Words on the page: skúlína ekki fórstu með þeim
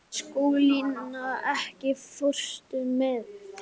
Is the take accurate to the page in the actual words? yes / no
yes